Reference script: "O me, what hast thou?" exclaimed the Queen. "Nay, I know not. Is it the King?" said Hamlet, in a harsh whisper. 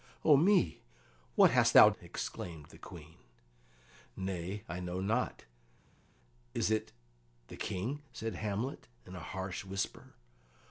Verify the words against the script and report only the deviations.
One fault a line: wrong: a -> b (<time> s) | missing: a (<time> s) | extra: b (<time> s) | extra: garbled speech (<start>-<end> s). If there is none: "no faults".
no faults